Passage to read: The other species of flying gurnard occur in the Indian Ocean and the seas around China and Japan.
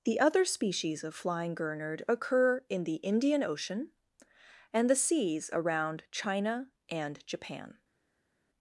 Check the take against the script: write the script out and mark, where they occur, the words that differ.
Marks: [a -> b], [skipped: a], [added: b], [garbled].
The other species of flying gurnard occur in the Indian Ocean and the seas around China and Japan.